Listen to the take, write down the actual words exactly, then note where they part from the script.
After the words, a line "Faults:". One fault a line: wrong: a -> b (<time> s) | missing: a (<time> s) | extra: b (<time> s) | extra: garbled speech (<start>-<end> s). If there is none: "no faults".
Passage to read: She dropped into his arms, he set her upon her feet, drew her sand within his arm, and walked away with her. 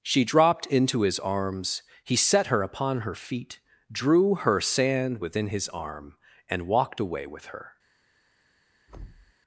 She dropped into his arms, he set her upon her feet, drew her sand within his arm, and walked away with her.
Faults:
no faults